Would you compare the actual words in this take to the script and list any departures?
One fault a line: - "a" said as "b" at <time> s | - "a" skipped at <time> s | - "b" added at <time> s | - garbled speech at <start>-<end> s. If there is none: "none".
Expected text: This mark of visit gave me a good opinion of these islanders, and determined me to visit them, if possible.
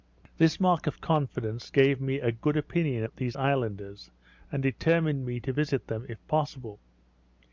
- "visit" said as "confidence" at 1.0 s